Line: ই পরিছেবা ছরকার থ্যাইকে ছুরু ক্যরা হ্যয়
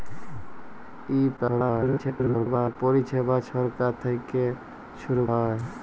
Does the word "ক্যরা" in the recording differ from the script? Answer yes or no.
yes